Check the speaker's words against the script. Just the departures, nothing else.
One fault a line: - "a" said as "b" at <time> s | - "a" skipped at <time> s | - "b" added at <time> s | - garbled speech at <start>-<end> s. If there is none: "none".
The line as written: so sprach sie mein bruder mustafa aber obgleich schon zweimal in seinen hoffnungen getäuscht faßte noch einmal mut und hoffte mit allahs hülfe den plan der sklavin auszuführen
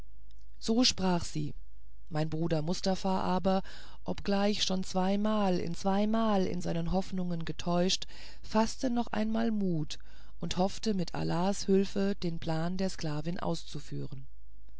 - "zweimal in" added at 5.7 s